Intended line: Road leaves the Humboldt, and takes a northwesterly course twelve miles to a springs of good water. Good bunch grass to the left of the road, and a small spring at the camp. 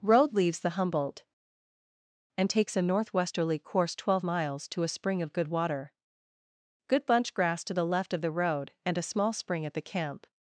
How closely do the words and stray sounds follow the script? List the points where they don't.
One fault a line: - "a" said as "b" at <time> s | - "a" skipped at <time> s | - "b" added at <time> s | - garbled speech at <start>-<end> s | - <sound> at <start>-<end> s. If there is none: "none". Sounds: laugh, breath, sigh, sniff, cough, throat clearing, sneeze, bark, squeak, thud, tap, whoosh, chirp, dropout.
- "springs" said as "spring" at 4.9 s